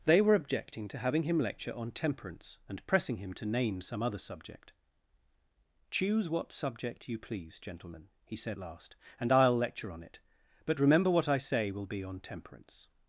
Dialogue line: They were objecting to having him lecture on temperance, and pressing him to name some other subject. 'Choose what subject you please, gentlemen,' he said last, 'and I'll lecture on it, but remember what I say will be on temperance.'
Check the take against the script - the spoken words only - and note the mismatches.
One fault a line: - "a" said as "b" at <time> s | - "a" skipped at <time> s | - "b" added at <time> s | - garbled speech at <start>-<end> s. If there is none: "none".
none